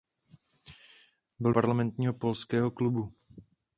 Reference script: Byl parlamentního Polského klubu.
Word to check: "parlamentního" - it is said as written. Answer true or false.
true